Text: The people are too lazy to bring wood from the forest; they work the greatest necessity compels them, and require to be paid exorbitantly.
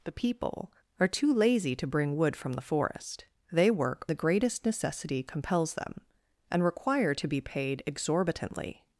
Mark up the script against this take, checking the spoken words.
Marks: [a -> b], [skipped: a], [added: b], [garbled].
The people are too lazy to bring wood from the forest; they work the greatest necessity compels them, and require to be paid exorbitantly.